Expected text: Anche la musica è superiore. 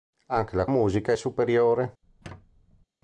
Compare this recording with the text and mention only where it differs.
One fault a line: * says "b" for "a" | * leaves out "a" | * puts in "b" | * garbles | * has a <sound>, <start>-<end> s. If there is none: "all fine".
* has a squeak, 2.0-2.9 s